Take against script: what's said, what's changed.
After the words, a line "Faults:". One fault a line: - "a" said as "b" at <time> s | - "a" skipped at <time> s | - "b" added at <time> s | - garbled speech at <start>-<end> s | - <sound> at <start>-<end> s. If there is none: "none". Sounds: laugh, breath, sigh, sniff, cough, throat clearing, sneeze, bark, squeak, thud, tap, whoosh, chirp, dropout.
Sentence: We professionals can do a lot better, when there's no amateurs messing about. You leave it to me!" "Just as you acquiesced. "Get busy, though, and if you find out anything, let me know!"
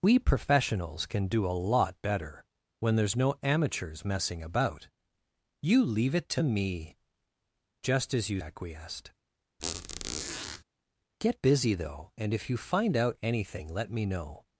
We professionals can do a lot better, when there's no amateurs messing about. You leave it to me!" "Just as you acquiesced. "Get busy, though, and if you find out anything, let me know!"
Faults:
- squeak at 9.6-10.6 s